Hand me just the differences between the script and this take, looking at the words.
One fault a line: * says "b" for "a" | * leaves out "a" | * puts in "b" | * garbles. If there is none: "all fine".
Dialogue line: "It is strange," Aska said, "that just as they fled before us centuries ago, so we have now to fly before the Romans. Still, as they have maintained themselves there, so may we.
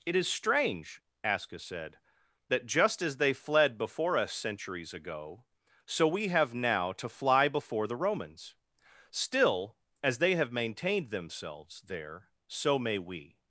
all fine